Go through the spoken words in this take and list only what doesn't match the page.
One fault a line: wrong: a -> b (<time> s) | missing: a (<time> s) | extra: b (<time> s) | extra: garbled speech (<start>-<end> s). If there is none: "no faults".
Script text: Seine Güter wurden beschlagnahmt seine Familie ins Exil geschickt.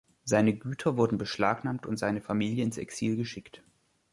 extra: und (1.9 s)